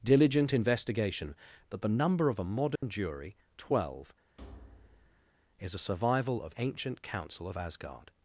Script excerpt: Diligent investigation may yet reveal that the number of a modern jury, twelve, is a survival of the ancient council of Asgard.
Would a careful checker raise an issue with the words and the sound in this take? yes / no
yes